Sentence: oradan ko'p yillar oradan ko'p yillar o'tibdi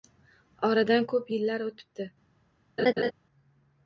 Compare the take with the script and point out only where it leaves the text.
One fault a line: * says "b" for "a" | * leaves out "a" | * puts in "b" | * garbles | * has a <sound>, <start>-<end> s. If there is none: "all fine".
* leaves out "oradan ko'p yillar"
* has a laugh, 2.8-3.1 s